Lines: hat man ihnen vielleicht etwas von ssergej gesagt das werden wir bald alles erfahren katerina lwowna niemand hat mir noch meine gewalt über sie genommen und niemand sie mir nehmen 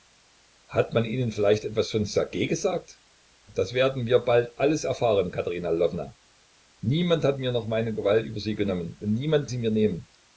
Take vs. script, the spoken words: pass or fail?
pass